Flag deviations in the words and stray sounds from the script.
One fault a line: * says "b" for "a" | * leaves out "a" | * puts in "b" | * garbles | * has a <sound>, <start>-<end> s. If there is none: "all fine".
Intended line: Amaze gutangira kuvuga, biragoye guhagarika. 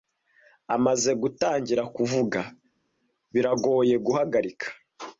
all fine